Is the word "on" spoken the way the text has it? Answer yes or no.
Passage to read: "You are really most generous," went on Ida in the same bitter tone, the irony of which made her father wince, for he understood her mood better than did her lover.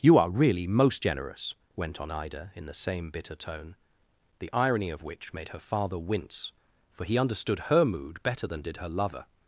yes